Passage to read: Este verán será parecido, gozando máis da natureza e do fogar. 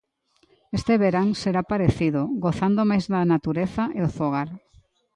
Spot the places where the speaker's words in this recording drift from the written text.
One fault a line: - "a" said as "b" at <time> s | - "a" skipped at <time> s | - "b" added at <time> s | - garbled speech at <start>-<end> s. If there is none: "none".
none